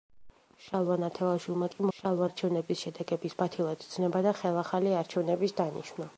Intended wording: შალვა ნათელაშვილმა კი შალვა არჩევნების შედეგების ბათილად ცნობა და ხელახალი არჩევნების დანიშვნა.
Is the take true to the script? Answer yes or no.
yes